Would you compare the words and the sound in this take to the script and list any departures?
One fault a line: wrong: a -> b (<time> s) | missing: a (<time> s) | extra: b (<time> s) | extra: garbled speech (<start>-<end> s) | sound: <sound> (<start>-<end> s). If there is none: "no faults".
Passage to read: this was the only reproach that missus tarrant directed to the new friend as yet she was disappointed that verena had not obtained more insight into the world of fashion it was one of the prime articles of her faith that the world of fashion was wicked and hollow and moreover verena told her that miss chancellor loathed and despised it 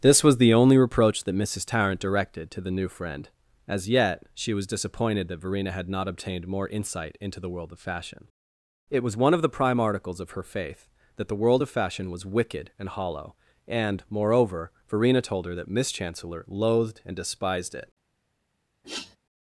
sound: sniff (18.8-19.2 s)